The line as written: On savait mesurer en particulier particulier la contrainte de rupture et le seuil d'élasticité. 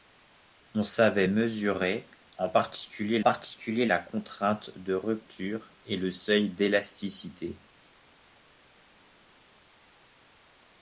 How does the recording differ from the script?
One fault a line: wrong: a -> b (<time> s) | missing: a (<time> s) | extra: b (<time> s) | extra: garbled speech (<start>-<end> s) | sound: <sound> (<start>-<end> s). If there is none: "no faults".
no faults